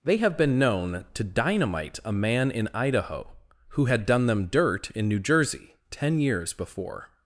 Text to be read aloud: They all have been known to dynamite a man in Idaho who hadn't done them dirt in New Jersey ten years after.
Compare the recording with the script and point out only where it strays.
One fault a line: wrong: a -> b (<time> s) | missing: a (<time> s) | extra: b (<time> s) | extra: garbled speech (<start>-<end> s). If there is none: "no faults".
missing: all (0.2 s)
wrong: hadn't -> had (3.9 s)
wrong: after -> before (6.5 s)